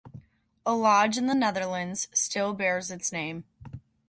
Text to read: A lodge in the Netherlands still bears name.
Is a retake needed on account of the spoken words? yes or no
yes